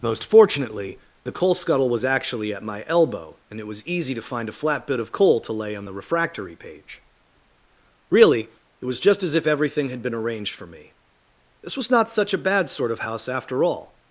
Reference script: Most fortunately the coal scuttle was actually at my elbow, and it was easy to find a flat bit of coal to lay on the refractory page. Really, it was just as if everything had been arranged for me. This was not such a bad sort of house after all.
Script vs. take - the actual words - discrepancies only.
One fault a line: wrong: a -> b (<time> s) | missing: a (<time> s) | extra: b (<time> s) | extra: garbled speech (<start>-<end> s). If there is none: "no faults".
no faults